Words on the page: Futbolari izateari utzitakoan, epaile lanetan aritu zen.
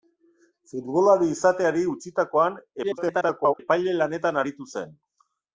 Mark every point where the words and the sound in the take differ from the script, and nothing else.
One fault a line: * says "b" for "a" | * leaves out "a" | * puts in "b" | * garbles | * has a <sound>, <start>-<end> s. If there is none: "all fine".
* garbles